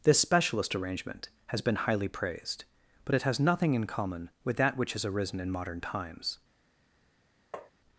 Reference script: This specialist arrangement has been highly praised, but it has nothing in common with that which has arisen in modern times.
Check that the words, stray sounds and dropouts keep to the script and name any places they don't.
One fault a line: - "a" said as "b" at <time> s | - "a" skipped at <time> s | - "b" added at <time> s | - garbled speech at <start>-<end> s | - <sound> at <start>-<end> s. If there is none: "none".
- tap at 7.5-7.7 s